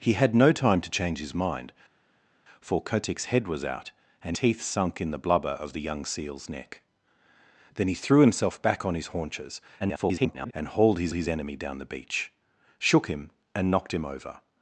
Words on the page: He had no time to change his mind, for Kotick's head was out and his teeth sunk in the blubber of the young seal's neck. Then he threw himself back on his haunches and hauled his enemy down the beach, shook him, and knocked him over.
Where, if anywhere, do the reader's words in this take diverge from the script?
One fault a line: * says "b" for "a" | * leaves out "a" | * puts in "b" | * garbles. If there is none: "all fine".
* leaves out "his"
* garbles
* puts in "his"